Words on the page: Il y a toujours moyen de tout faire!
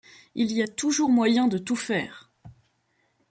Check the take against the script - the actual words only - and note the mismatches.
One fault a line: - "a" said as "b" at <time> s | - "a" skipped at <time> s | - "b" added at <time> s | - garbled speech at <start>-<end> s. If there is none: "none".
none